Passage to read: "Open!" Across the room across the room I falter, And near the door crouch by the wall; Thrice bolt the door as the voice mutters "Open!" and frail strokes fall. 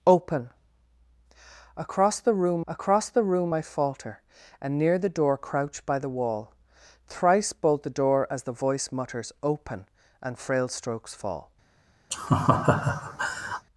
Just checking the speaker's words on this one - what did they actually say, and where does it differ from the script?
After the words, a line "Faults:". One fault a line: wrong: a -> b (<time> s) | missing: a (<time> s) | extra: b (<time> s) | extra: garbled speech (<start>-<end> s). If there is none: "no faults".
"Open!" Across the room across the room I falter, And near the door crouch by the wall; Thrice bolt the door as the voice mutters "Open!" and frail strokes fall.
Faults:
no faults